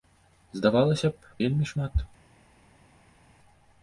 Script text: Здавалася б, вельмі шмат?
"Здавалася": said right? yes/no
yes